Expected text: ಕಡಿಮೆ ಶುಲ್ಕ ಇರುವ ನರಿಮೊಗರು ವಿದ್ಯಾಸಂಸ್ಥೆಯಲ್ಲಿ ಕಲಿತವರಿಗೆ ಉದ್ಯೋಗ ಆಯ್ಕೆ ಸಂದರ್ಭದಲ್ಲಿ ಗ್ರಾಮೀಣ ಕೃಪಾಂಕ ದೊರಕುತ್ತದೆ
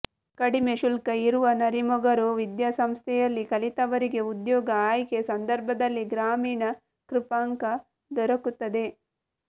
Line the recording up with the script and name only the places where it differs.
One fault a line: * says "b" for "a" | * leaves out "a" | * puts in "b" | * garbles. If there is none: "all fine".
all fine